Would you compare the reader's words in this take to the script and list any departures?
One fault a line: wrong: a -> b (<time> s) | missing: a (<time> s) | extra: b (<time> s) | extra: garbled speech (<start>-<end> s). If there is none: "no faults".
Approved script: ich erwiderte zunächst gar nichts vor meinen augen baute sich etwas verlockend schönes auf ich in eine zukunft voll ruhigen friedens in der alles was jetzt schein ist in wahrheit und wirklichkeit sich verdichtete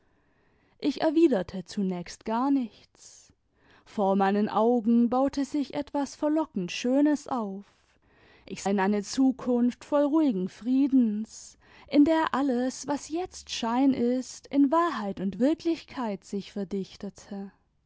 no faults